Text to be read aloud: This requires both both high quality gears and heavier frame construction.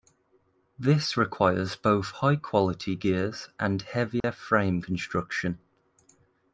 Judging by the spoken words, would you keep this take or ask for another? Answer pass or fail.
fail